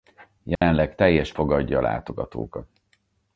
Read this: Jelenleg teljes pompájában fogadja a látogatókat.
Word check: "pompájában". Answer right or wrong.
wrong